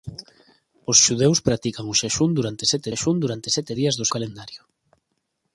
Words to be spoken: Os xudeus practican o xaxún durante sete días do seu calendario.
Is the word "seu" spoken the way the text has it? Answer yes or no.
no